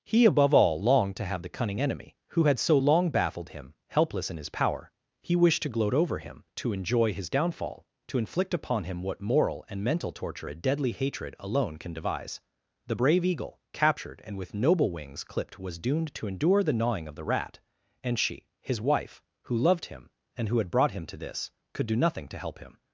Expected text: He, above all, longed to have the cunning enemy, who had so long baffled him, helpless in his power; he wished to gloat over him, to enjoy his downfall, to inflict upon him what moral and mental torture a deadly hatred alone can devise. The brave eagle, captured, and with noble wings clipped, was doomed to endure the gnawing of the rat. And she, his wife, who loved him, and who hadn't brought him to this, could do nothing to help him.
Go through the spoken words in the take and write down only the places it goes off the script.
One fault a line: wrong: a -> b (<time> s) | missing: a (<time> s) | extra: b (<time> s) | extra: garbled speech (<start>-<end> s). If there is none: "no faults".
wrong: hadn't -> had (20.6 s)